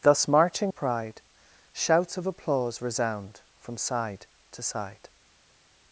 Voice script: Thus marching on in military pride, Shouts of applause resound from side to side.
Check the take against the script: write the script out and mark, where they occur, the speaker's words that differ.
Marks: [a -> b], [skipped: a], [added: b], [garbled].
Thus marching [skipped: on in military] pride, Shouts of applause resound from side to side.